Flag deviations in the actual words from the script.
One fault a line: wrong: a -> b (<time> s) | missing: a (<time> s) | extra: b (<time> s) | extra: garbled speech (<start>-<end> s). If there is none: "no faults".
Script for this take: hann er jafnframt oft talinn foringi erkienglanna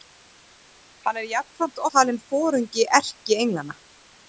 missing: oft (1.8 s)